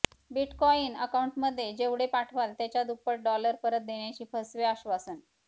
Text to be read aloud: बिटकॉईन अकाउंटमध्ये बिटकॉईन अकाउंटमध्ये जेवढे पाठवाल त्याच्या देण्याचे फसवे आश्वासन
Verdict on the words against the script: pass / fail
fail